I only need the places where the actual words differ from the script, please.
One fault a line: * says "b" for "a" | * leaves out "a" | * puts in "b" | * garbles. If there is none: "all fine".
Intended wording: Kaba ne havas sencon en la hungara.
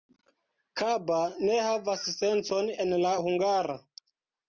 all fine